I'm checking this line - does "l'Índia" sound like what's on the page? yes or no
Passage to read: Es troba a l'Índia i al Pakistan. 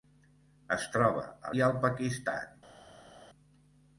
no